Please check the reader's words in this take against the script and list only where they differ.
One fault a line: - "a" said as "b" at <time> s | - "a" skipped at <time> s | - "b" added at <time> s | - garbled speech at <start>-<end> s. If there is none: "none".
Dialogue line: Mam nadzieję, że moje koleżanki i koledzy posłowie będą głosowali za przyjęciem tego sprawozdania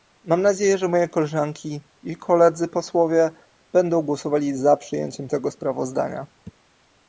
none